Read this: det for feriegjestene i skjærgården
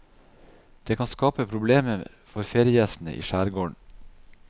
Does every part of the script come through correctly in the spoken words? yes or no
no